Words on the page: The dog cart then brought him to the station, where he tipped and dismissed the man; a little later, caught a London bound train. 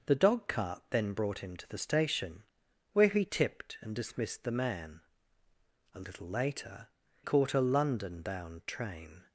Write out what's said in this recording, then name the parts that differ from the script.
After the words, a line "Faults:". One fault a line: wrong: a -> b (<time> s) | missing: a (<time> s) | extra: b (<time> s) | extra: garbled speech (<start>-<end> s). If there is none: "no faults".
The dog cart then brought him to the station, where he tipped and dismissed the man; a little later, caught a London bound train.
Faults:
no faults